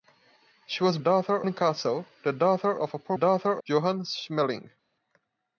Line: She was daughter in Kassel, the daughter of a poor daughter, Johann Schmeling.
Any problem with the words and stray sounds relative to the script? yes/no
no